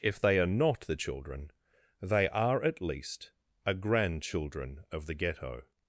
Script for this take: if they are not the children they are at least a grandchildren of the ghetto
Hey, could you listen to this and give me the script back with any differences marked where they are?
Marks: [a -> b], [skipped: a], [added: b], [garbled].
if they are not the children they are at least a grandchildren of the ghetto